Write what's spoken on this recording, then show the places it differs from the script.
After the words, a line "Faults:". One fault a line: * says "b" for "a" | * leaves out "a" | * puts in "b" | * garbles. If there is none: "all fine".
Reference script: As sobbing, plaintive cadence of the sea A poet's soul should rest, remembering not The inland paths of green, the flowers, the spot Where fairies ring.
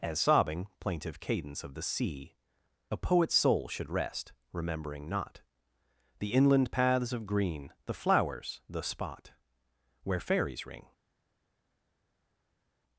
As sobbing, plaintive cadence of the sea A poet's soul should rest, remembering not The inland paths of green, the flowers, the spot Where fairies ring.
Faults:
all fine